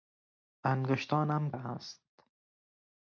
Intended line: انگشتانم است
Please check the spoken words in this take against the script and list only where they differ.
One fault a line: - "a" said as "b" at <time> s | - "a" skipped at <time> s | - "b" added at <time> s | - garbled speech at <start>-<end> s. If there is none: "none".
none